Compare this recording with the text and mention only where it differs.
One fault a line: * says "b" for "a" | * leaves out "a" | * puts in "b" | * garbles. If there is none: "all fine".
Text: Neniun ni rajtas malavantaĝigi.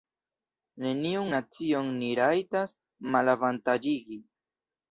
* puts in "nacion"